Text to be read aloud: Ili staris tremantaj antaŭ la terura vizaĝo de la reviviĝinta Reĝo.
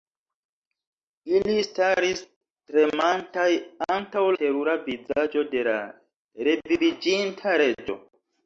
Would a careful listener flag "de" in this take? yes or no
no